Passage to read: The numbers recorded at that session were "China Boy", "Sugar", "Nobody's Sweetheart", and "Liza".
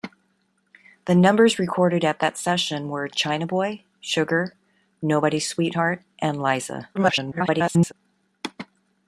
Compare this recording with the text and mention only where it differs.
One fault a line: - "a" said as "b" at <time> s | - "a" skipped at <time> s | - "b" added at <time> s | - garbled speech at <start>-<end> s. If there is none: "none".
- garbled speech at 6.9-7.9 s